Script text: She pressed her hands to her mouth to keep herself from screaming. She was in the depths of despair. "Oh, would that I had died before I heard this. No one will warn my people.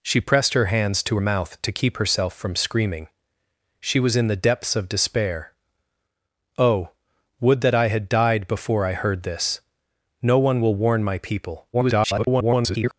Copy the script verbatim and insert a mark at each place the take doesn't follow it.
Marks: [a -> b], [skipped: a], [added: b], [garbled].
She pressed her hands to [skipped: her] mouth to keep herself from screaming. She was in the depths of despair. "Oh, would that I had died before I heard this. No one will warn my people. [garbled]